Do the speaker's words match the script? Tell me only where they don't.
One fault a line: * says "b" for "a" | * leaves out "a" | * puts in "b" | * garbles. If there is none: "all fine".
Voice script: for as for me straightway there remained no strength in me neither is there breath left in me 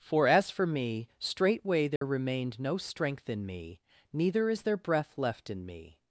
all fine